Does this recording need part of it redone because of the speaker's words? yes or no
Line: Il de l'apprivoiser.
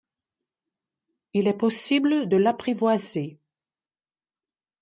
yes